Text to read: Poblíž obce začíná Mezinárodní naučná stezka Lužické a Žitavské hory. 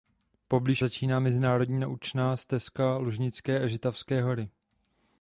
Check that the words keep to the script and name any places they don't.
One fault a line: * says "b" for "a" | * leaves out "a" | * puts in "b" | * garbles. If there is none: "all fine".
* leaves out "obce"